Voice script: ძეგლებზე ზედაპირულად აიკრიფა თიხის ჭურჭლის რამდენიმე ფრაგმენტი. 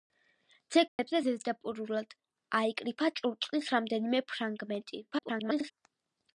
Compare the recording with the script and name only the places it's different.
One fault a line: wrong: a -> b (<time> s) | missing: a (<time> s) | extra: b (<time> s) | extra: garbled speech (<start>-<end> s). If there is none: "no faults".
missing: თიხის (3.1 s)
extra: garbled speech (5.1-5.7 s)